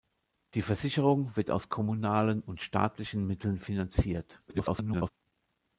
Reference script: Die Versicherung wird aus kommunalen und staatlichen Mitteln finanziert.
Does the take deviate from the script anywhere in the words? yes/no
yes